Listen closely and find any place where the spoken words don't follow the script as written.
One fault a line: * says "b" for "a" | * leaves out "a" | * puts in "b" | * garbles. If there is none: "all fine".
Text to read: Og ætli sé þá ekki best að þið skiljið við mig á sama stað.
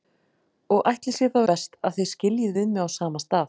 * leaves out "ekki"